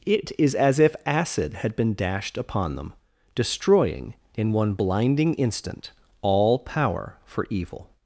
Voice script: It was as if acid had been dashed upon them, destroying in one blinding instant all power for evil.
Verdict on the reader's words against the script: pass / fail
fail